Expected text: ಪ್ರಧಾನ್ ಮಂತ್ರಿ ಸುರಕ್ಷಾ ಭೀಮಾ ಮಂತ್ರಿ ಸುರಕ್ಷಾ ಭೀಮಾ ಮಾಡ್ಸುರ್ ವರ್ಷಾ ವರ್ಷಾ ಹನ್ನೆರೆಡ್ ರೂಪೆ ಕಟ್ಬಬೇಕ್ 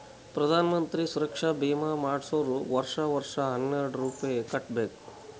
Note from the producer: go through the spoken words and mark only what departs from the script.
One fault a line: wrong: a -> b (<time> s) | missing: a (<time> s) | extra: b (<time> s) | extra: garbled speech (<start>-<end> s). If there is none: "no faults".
missing: ಮಂತ್ರಿ ಸುರಕ್ಷಾ ಭೀಮಾ (1.9 s)